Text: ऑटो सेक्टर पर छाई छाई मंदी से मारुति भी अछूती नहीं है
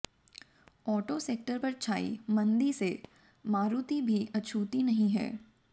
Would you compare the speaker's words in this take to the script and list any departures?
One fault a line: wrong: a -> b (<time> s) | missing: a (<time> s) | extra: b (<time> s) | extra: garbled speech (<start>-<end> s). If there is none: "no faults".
missing: छाई (2.2 s)